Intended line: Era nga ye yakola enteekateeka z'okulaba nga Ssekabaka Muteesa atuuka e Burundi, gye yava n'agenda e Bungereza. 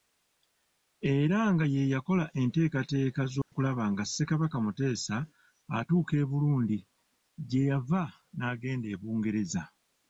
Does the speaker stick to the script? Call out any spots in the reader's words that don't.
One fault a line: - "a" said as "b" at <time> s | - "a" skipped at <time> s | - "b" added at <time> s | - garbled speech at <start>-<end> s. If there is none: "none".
none